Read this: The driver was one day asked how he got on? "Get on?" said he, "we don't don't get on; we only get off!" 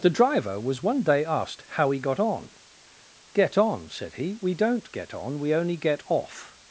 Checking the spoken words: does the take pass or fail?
fail